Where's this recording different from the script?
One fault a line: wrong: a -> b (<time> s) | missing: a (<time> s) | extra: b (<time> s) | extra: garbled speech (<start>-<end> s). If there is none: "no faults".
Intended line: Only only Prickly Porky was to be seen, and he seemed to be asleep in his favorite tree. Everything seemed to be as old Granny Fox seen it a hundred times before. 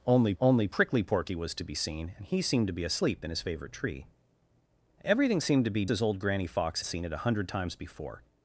no faults